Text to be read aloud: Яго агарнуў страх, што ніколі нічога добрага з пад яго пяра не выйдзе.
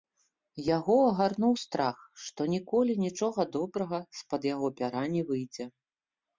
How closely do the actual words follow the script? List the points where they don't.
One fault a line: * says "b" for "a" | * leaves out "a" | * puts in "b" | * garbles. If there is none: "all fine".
all fine